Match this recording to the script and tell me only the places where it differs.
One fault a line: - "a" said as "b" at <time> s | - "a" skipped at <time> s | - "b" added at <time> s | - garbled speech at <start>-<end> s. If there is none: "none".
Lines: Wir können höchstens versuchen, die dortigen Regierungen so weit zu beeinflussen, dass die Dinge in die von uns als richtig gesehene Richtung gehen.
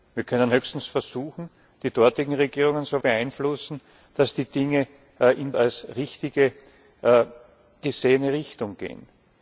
- "weit zu" skipped at 3.0 s
- "die von uns" skipped at 5.5 s